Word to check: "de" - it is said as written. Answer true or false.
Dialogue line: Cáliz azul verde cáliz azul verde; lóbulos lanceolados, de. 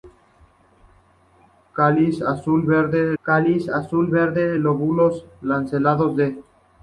true